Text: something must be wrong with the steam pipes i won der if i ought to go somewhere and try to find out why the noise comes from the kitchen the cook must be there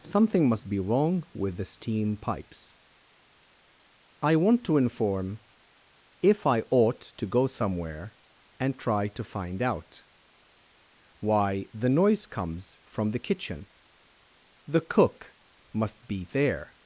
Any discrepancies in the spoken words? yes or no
yes